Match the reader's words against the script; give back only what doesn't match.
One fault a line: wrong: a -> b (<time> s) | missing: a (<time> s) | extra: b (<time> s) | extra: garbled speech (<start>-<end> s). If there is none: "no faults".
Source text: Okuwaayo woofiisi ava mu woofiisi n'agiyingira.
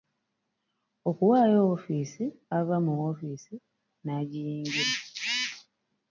no faults